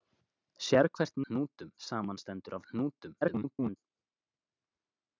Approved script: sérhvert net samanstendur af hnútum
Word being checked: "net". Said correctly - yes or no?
no